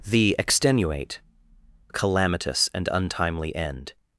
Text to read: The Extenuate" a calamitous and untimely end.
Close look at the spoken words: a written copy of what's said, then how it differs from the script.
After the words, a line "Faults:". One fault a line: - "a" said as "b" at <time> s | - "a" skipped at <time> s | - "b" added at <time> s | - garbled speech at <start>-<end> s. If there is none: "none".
The Extenuate" a calamitous and untimely end.
Faults:
none